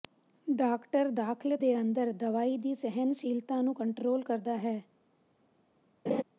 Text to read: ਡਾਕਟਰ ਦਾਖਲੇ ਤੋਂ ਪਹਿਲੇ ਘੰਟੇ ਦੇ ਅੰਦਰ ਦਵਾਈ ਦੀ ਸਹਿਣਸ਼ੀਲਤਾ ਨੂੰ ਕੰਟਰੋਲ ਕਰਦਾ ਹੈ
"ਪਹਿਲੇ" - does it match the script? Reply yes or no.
no